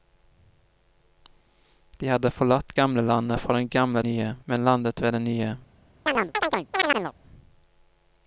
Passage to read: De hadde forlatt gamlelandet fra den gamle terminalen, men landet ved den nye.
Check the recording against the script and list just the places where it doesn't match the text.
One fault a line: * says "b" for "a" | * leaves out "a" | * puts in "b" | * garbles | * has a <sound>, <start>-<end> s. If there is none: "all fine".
* says "nye" for "terminalen"
* has a chirp, 6.1-7.1 s